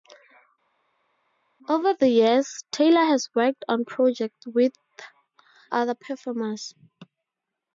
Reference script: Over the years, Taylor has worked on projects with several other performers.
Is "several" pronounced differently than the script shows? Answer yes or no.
yes